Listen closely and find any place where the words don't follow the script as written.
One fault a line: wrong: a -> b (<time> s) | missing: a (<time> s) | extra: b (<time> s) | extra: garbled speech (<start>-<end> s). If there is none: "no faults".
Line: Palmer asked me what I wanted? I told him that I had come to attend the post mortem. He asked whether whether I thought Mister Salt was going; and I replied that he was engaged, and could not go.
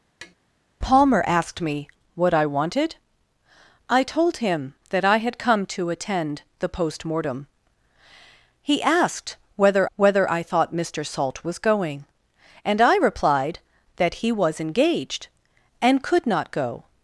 no faults